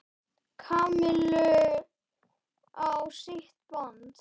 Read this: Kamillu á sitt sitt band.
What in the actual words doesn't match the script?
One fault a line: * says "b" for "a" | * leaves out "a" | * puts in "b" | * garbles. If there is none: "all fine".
* leaves out "sitt"